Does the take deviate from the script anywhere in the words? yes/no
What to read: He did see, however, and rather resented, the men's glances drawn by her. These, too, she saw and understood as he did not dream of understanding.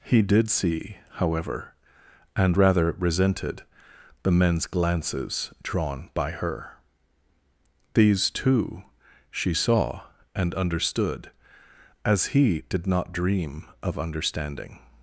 no